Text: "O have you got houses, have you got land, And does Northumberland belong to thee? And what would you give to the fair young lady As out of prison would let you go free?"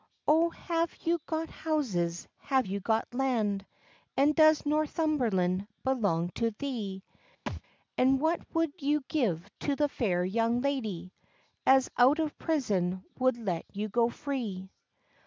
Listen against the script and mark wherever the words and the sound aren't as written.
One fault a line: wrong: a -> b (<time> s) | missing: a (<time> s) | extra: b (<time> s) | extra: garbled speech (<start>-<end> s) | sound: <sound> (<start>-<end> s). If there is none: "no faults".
sound: thud (7.5-7.6 s)